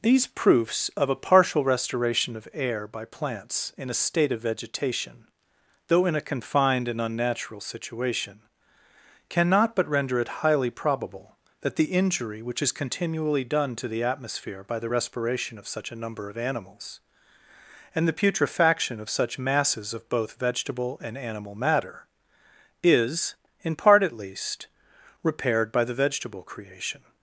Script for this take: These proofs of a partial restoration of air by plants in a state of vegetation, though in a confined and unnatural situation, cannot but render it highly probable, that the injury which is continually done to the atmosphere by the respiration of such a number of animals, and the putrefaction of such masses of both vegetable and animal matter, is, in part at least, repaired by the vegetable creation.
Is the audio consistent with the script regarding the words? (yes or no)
yes